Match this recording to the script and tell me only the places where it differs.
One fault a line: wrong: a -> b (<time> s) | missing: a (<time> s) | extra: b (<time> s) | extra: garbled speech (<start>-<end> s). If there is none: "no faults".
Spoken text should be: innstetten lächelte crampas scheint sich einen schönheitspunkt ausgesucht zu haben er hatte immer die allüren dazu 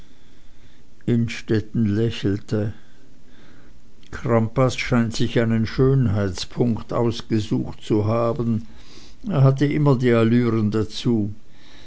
no faults